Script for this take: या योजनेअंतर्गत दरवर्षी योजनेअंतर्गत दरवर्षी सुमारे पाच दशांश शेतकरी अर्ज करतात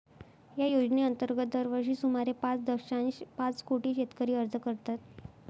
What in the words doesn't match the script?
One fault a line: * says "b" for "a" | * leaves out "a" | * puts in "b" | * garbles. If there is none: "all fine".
* says "सुमारे पाच दशांश" for "योजनेअंतर्गत दरवर्षी सुमारे"
* says "कोटी" for "दशांश"